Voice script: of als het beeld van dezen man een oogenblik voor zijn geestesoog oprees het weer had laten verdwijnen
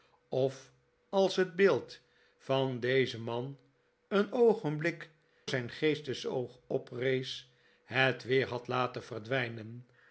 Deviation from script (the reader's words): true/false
true